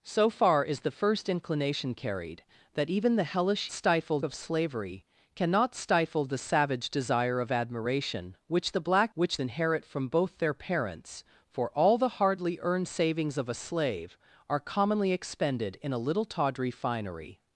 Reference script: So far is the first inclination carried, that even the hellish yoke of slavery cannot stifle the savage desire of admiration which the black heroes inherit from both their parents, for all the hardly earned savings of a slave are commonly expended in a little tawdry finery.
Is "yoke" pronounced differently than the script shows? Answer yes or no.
yes